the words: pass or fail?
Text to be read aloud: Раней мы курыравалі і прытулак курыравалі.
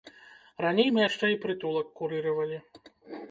fail